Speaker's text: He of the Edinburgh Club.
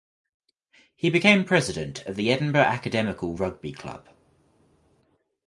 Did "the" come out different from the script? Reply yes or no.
no